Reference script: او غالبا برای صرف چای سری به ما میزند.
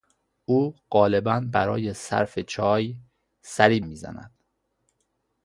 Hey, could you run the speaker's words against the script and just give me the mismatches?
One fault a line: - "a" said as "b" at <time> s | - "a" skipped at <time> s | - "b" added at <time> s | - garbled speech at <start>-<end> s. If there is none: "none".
- "به ما" skipped at 3.8 s